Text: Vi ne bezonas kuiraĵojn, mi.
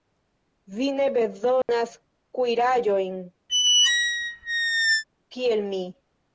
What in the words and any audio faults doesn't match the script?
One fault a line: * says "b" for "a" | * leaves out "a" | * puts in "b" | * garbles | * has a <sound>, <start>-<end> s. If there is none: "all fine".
* has a dropout, 1.6-1.7 s
* has a squeak, 3.5-5.0 s
* puts in "kiel"